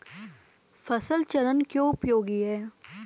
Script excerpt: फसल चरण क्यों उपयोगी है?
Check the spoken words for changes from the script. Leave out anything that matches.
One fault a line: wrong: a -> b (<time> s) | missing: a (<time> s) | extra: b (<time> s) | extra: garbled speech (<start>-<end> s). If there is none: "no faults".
no faults